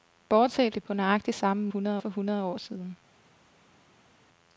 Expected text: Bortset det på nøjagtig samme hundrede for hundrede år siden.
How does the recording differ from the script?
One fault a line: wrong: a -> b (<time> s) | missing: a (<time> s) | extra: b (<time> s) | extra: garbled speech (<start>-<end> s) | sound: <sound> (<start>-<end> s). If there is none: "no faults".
no faults